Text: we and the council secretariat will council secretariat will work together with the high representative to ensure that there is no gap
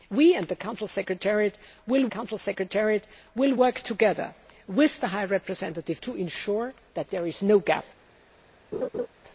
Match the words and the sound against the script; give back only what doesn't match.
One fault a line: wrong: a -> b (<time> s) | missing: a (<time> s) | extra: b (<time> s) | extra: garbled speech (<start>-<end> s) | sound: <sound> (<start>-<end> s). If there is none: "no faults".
sound: laugh (8.7-9.1 s)